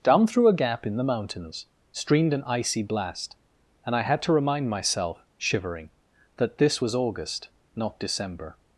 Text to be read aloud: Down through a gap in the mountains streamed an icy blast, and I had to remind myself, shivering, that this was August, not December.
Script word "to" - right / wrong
right